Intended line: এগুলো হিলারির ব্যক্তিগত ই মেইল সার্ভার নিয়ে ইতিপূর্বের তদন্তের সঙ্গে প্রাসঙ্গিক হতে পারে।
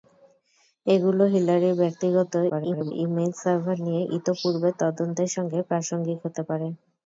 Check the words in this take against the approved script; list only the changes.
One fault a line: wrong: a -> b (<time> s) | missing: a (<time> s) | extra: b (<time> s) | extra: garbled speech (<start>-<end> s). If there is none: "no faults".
extra: garbled speech (2.5-2.9 s)